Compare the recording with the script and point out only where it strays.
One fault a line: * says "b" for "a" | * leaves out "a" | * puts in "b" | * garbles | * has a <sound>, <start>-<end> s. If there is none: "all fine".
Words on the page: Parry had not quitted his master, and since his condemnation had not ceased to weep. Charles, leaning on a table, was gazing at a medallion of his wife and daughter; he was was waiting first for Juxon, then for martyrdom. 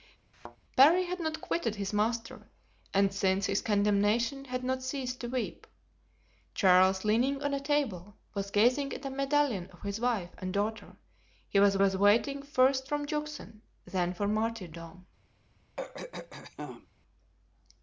* has a thud, 0.3-0.6 s
* has a throat clearing, 15.8-16.9 s